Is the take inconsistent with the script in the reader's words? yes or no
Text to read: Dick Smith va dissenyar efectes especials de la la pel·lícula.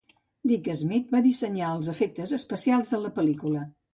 yes